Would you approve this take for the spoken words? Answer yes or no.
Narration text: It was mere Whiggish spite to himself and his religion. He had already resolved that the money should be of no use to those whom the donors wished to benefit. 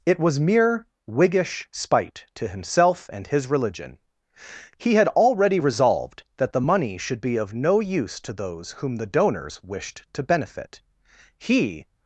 no